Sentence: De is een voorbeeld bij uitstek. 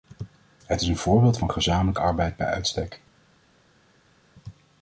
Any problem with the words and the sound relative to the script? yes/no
yes